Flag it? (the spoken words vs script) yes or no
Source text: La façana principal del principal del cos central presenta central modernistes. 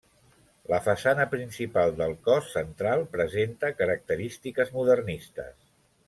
yes